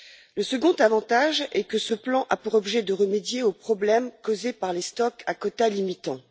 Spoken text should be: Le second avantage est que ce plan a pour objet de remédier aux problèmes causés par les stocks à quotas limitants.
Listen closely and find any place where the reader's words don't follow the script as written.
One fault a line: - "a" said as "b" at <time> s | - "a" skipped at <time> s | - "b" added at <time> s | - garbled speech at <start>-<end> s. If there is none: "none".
none